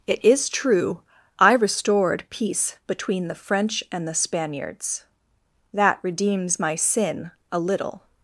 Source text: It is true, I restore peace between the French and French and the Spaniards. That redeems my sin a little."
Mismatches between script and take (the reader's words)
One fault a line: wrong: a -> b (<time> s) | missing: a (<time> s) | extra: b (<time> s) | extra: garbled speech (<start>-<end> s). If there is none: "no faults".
wrong: restore -> restored (1.5 s)
missing: French and (4.1 s)